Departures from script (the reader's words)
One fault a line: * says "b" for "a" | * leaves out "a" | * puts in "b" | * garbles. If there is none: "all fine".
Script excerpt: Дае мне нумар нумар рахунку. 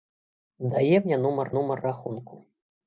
all fine